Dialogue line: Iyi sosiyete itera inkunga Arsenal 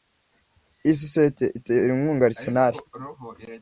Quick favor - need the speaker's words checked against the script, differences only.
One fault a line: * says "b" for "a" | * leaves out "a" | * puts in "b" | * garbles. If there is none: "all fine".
all fine